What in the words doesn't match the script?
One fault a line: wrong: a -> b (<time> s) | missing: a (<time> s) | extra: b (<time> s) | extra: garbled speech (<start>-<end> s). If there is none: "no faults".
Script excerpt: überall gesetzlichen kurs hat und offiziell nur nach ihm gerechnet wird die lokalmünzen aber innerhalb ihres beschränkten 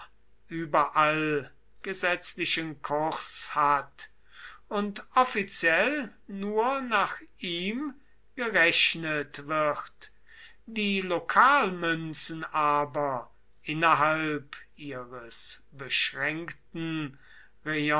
no faults